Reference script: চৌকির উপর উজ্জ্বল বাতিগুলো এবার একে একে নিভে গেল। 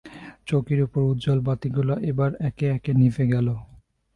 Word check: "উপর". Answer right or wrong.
right